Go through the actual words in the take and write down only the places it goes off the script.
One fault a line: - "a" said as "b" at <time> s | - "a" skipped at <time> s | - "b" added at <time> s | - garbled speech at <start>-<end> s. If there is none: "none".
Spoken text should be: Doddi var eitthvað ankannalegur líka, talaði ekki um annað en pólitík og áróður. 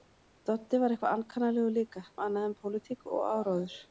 - "talaði ekki" skipped at 2.1 s